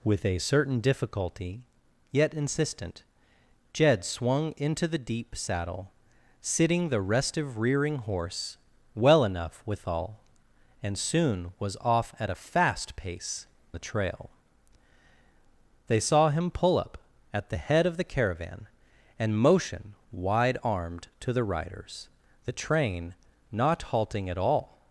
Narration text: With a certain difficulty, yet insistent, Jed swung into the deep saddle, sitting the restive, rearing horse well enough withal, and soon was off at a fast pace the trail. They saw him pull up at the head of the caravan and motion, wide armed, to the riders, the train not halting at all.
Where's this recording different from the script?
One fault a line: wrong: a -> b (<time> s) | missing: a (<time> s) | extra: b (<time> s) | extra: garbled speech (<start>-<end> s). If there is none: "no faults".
no faults